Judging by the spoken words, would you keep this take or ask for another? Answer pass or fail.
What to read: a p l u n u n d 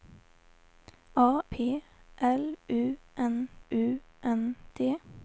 pass